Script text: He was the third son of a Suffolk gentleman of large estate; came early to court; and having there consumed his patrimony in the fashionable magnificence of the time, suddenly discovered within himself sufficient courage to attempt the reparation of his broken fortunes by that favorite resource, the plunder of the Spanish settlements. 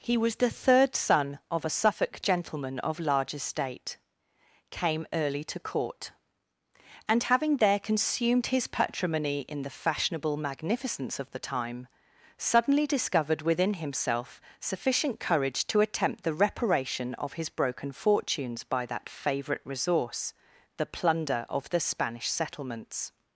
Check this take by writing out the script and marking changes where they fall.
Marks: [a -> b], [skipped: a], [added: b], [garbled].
He was the third son of a Suffolk gentleman of large estate; came early to court; and having there consumed his patrimony in the fashionable magnificence of the time, suddenly discovered within himself sufficient courage to attempt the reparation of his broken fortunes by that favorite resource, the plunder of the Spanish settlements.